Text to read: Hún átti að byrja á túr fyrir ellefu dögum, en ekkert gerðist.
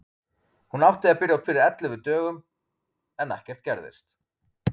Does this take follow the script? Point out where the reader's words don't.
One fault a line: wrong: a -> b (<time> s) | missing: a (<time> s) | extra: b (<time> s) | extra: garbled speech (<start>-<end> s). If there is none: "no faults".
missing: túr (1.4 s)